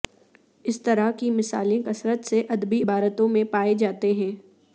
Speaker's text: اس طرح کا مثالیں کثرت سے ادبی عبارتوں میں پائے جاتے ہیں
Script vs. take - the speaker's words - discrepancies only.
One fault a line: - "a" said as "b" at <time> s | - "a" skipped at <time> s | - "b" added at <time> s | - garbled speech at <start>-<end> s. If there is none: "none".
- "کا" said as "کی" at 1.1 s